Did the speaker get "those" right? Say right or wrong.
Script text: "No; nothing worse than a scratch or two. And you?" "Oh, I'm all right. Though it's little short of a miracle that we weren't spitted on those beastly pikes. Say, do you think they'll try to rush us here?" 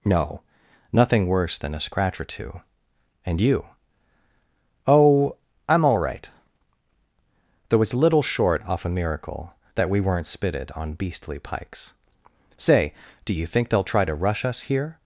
wrong